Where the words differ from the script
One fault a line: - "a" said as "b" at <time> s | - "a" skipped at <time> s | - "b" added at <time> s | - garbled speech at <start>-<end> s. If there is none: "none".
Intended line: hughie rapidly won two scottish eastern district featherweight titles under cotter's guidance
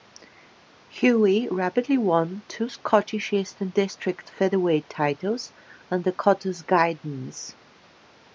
none